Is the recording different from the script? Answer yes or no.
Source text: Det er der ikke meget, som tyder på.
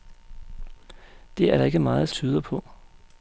yes